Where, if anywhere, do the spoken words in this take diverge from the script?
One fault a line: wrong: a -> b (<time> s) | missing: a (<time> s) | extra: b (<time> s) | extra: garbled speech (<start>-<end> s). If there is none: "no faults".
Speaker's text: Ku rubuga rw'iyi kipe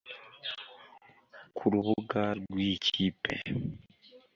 no faults